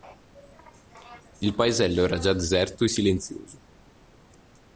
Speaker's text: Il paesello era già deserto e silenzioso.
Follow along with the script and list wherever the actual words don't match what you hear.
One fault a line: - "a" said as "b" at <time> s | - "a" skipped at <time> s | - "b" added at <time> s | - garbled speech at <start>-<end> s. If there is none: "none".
none